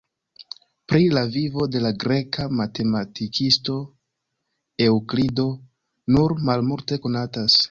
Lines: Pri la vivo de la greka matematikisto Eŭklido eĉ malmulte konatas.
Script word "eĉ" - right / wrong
wrong